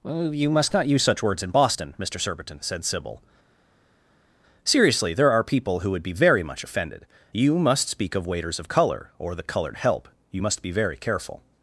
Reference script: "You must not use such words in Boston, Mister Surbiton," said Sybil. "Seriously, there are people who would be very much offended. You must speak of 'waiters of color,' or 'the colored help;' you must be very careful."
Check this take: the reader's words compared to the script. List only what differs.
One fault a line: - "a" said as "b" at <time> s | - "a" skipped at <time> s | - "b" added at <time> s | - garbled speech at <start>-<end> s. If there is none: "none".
none